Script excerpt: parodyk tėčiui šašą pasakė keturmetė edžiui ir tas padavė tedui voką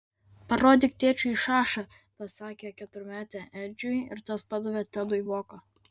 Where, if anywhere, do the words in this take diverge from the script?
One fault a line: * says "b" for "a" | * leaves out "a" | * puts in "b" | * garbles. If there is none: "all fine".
all fine